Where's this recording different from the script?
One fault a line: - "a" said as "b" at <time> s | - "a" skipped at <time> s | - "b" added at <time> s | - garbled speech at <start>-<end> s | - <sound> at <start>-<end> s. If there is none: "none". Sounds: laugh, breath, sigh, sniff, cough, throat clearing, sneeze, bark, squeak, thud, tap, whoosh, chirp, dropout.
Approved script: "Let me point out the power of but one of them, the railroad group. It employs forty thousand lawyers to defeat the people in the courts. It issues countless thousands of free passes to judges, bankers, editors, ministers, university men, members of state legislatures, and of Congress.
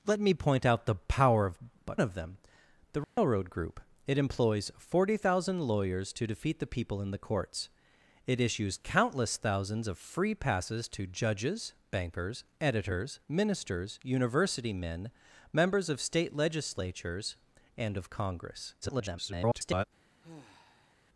- "one" skipped at 2.0 s
- dropout at 3.0-3.2 s
- garbled speech at 18.8-19.8 s
- sigh at 20.2-21.0 s